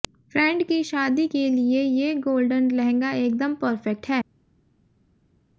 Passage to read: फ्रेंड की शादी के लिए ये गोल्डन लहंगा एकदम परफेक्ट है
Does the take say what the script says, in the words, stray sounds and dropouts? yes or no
yes